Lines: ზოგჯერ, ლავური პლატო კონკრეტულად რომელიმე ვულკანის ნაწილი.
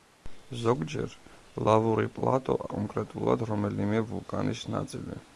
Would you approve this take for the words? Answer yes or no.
yes